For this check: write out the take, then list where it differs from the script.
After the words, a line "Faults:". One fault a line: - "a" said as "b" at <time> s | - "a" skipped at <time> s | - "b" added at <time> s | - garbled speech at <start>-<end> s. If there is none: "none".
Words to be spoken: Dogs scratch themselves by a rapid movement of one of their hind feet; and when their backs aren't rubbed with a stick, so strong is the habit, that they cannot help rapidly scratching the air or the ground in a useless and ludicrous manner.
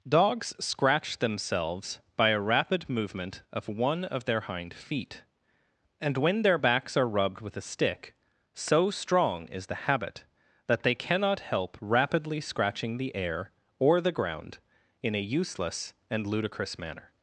Dogs scratch themselves by a rapid movement of one of their hind feet; and when their backs are rubbed with a stick, so strong is the habit, that they cannot help rapidly scratching the air or the ground in a useless and ludicrous manner.
Faults:
- "aren't" said as "are" at 7.0 s